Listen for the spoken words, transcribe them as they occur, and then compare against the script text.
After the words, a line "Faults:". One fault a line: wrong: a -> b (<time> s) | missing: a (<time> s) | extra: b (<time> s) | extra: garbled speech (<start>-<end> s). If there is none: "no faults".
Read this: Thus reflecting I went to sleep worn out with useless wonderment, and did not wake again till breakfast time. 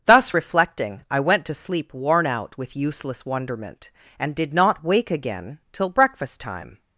Thus reflecting I went to sleep worn out with useless wonderment, and did not wake again till breakfast time.
Faults:
no faults